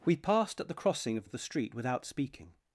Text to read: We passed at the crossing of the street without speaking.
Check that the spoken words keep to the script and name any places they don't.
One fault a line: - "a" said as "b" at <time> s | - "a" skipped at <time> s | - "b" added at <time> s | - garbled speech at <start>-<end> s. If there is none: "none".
- "of" added at 1.2 s